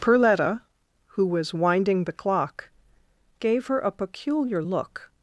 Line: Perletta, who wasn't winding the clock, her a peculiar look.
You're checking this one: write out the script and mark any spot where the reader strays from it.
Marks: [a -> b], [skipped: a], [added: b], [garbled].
Perletta, who [wasn't -> was] winding the clock, [added: gave] her a peculiar look.